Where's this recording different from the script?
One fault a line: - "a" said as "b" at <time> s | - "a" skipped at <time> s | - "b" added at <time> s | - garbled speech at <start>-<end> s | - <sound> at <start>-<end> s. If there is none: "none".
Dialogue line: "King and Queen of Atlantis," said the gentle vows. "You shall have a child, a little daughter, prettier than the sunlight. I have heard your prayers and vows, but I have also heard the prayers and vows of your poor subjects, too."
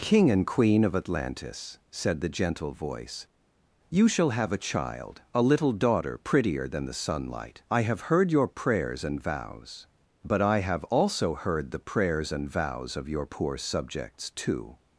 - "vows" said as "voice" at 2.7 s